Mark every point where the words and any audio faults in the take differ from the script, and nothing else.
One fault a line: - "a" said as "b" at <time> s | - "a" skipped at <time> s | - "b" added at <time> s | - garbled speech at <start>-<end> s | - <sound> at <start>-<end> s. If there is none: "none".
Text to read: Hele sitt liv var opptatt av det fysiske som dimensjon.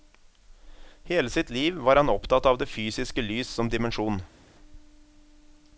- "han" added at 1.9 s
- "lys" added at 3.2 s